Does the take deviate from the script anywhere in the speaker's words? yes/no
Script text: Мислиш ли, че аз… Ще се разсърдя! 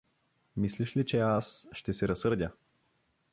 no